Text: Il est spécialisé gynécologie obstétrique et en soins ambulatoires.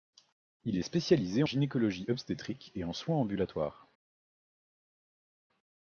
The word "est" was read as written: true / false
true